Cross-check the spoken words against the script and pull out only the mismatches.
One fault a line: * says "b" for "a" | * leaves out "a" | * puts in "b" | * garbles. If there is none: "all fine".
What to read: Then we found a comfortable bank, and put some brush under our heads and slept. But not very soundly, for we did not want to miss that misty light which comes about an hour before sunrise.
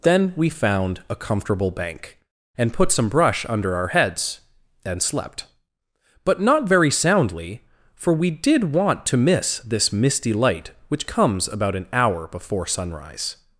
* leaves out "not"
* says "this" for "that"